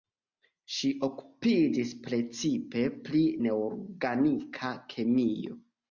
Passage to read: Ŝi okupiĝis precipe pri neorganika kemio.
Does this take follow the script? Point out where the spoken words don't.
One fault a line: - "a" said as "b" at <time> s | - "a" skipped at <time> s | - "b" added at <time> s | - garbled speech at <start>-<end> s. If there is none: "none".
none